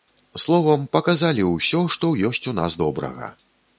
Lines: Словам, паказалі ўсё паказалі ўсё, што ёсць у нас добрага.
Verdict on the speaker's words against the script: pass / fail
fail